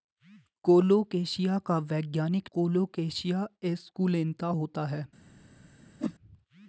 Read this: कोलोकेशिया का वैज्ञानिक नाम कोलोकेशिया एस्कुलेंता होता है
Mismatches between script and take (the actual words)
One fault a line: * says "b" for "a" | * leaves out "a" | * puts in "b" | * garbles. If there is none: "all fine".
* leaves out "नाम"